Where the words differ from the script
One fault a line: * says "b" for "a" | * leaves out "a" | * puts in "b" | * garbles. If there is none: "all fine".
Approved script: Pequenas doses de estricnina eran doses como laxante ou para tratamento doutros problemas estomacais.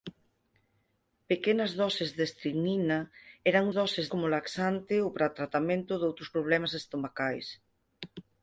all fine